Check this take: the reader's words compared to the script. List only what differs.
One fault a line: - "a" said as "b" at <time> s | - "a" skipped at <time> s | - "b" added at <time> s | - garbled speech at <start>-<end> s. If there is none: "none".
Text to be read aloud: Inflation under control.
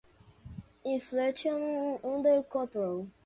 none